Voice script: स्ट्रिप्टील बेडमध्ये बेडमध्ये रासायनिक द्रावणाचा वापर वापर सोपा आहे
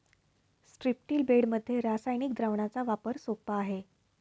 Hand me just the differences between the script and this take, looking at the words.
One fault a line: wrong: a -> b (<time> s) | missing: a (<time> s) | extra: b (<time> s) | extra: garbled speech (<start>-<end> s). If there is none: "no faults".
missing: बेडमध्ये (1.8 s)
missing: वापर (3.2 s)